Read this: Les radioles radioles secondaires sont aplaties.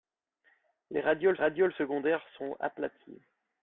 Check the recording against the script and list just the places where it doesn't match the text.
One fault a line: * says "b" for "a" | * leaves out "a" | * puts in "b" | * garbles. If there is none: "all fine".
all fine